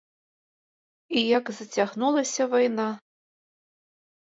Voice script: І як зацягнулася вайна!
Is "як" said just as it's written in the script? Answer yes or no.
yes